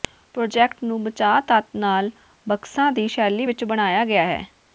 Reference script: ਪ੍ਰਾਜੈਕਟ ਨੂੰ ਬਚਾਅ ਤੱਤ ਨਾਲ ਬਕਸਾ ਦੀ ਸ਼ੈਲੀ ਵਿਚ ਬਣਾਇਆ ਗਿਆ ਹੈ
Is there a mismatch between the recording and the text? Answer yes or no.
no